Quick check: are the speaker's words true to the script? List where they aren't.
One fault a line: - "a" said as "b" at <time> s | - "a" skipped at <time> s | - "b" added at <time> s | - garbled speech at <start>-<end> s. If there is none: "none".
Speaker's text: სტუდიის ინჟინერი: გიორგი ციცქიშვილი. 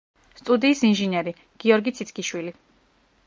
none